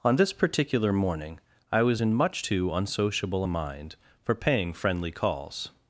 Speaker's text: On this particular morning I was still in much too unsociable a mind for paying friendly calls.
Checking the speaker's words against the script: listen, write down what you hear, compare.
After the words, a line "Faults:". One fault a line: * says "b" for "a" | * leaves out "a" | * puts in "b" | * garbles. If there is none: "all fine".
On this particular morning I was in much too unsociable a mind for paying friendly calls.
Faults:
* leaves out "still"